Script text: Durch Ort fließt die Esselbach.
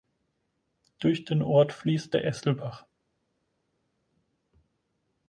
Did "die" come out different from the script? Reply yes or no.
yes